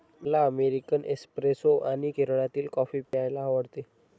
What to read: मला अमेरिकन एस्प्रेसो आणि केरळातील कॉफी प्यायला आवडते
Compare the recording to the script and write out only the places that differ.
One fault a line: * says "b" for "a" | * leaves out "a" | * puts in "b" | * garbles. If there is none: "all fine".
all fine